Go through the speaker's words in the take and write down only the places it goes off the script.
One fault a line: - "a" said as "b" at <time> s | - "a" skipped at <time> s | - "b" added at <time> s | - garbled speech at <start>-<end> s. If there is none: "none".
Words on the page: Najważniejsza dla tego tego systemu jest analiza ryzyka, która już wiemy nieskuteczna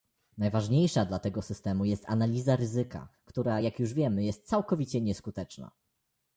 - "tego" skipped at 1.4 s
- "jak" added at 3.6 s
- "jest całkowicie" added at 4.2 s